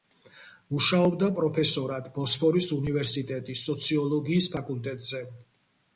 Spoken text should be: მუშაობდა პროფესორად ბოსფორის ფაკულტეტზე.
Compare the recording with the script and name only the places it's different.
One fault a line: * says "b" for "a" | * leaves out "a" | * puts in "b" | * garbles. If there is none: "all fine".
* puts in "უნივერსიტეტის სოციოლოგიის"